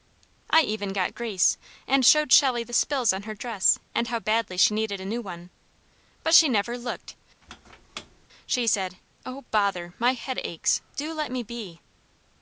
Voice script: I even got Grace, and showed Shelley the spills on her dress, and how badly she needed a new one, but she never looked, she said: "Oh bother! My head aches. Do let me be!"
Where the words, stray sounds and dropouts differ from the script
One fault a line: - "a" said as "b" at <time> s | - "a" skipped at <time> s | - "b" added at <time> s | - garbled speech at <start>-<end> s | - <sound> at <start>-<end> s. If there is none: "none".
- squeak at 7.4-8.3 s